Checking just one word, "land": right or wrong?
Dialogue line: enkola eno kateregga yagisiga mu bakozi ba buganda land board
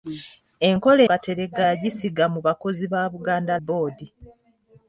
wrong